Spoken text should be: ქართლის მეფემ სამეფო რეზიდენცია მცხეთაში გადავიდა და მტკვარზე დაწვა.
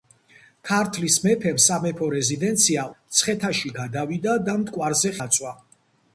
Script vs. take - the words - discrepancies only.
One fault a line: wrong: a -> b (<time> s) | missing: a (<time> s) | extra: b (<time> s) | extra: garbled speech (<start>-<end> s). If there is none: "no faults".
no faults